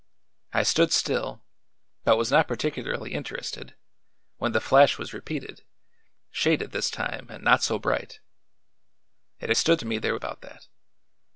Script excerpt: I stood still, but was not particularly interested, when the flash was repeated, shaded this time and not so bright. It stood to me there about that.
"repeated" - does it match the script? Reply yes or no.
yes